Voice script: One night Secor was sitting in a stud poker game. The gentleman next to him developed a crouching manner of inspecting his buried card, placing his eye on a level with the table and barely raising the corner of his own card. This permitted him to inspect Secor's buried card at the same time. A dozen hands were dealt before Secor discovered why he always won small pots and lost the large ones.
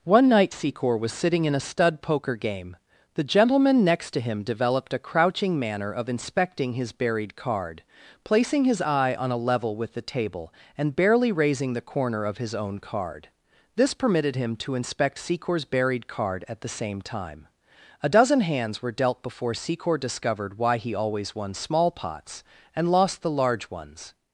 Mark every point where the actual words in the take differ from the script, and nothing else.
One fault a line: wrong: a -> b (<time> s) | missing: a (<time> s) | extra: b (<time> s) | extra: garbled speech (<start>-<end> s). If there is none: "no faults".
no faults